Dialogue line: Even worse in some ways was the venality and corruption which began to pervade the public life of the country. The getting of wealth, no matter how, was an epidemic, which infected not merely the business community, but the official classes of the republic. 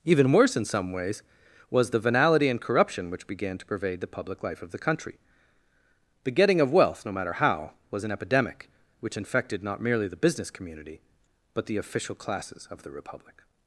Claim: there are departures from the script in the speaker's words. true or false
false